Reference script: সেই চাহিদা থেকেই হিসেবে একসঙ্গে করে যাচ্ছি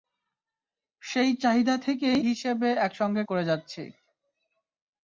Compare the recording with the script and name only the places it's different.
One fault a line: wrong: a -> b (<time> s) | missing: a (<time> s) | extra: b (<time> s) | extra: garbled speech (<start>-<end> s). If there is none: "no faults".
no faults